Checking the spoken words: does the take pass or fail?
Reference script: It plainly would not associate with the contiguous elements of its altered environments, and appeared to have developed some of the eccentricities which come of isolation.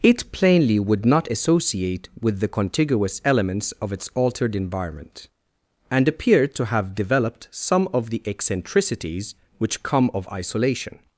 fail